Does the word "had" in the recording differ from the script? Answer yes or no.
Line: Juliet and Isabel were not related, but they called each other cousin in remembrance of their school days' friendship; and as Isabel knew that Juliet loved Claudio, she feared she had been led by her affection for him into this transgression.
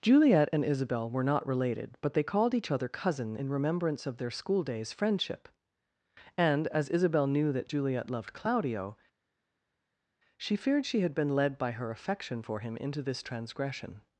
no